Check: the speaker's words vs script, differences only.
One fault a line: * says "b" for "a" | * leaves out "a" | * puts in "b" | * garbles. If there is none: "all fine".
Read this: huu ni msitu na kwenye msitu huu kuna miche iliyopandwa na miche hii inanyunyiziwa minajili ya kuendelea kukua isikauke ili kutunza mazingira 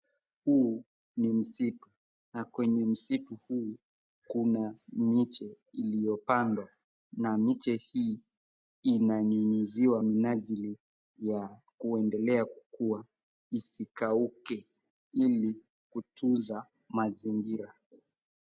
all fine